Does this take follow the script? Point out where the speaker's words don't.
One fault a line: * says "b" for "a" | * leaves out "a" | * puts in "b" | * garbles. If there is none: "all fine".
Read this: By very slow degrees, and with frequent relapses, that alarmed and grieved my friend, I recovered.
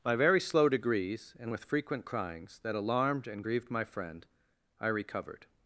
* says "cryings" for "relapses"